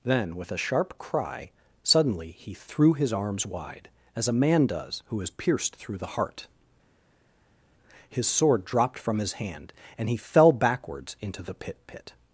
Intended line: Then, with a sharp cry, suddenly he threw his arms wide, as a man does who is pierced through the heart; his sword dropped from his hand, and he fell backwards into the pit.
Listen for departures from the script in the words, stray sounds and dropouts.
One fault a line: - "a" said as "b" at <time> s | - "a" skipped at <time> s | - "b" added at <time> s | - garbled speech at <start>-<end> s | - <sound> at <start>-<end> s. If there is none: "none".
- "pit" added at 11.8 s